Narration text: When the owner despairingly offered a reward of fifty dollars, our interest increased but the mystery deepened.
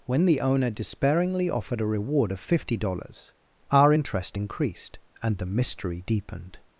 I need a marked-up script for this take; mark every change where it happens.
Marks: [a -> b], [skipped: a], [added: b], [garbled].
When the owner despairingly offered a reward of fifty dollars, our interest increased [but -> and] the mystery deepened.